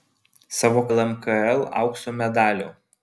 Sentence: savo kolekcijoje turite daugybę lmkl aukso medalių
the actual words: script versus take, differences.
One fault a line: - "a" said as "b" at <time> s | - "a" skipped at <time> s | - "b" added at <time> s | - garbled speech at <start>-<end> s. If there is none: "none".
- "kolekcijoje turite daugybę" skipped at 0.8 s